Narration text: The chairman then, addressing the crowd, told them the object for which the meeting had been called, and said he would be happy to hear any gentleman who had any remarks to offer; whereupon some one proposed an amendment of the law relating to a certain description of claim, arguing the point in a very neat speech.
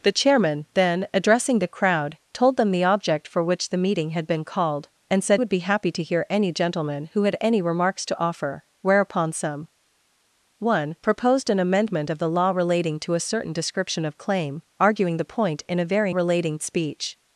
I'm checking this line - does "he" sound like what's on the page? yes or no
no